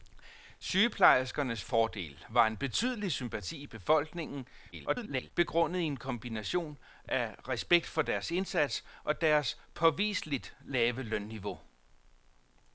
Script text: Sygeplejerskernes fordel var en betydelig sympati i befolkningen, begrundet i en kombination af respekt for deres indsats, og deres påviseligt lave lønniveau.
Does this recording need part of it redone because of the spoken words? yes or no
yes